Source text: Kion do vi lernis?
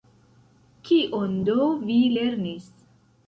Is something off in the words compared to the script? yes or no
no